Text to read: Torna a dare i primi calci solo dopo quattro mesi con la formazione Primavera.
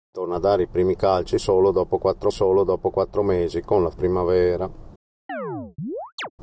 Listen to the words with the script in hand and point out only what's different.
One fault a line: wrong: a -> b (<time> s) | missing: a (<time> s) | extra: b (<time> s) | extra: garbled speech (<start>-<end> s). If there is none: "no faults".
extra: solo dopo quattro (2.3 s)
missing: formazione (3.9 s)